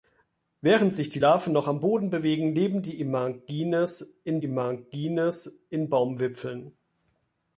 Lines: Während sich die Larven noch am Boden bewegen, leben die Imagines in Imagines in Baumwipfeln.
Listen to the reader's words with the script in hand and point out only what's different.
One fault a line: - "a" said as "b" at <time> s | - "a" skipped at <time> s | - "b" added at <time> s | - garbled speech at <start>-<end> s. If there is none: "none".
none